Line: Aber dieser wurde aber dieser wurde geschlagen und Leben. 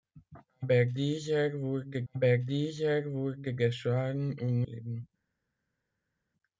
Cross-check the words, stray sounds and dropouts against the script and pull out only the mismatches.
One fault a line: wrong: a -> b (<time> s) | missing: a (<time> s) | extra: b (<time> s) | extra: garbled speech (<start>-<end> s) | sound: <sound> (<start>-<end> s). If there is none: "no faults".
no faults